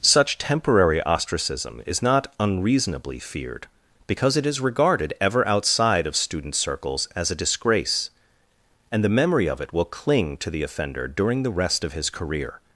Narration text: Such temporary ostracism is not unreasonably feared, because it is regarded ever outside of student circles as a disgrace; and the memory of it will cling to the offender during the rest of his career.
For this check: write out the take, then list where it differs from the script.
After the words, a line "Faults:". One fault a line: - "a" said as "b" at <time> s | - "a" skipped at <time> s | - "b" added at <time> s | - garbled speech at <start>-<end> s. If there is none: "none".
Such temporary ostracism is not unreasonably feared, because it is regarded ever outside of student circles as a disgrace; and the memory of it will cling to the offender during the rest of his career.
Faults:
none